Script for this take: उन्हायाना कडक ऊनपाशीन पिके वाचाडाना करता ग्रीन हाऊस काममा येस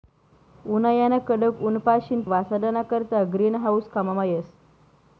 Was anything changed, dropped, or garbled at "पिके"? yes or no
yes